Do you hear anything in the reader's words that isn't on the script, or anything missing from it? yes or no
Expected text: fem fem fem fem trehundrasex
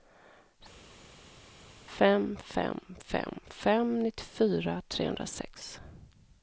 yes